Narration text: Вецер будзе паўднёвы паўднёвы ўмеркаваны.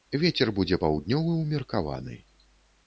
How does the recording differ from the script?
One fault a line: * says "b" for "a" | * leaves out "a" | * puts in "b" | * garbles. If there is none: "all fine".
* leaves out "паўднёвы"